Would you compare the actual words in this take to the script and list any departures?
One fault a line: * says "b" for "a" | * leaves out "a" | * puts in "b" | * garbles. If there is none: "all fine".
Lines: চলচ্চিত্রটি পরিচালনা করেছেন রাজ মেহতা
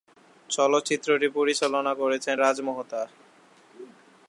all fine